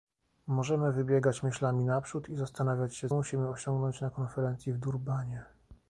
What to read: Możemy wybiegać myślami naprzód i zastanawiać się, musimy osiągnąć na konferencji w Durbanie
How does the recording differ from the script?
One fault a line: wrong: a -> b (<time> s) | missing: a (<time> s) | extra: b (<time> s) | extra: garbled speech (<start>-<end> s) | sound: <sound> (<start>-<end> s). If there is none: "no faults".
no faults